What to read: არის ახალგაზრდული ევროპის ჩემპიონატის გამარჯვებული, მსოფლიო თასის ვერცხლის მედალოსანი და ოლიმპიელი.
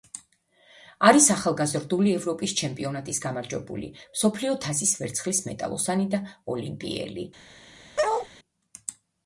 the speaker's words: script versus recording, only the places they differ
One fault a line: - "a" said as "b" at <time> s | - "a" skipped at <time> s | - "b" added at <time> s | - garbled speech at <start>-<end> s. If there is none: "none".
none